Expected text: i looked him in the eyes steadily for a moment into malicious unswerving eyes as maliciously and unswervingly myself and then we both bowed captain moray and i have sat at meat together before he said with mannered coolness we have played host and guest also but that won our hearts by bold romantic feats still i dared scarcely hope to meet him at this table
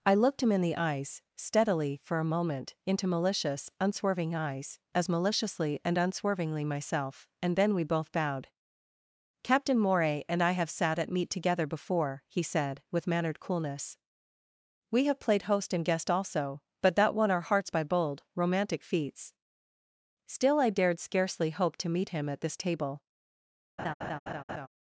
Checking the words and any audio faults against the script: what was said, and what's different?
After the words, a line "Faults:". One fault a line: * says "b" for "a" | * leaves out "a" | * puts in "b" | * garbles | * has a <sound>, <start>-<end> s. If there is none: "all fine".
i looked him in the eyes steadily for a moment into malicious unswerving eyes as maliciously and unswervingly myself and then we both bowed captain moray and i have sat at meat together before he said with mannered coolness we have played host and guest also but that won our hearts by bold romantic feats still i dared scarcely hope to meet him at this table
Faults:
* has a laugh, 23.8-24.7 s